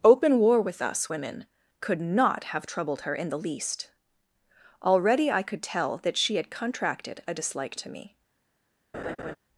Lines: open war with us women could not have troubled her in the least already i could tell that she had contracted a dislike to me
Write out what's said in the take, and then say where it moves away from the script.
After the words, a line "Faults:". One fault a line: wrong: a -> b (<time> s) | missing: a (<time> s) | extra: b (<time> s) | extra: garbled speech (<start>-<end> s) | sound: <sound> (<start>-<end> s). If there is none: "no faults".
open war with us women could not have troubled her in the least already i could tell that she had contracted a dislike to me
Faults:
sound: laugh (8.9-9.4 s)